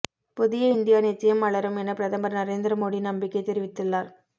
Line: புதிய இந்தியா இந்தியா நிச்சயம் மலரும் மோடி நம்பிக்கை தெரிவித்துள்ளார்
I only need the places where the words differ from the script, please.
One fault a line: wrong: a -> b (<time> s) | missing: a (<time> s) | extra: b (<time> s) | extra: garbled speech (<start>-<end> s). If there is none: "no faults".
missing: இந்தியா (1.0 s)
extra: என பிரதமர் நரேந்திர (1.8 s)